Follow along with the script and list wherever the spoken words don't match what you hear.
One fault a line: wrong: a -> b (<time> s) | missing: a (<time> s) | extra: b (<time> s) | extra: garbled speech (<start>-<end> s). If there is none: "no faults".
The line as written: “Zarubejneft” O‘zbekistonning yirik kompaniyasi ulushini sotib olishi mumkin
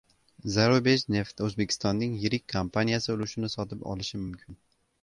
no faults